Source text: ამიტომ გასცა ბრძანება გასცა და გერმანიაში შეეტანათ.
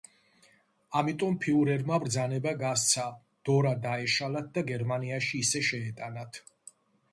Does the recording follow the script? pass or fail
fail